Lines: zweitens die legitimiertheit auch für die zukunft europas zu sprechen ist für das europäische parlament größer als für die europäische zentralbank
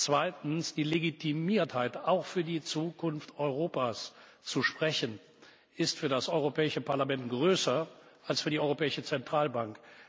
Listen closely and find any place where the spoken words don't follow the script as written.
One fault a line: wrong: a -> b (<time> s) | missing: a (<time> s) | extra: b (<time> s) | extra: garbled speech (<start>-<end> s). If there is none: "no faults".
no faults